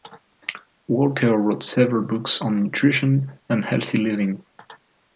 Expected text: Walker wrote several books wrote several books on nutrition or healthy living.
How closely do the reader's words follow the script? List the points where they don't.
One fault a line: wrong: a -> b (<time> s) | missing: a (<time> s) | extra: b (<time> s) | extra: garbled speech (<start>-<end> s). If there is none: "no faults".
missing: wrote several books (2.4 s)
wrong: or -> and (3.5 s)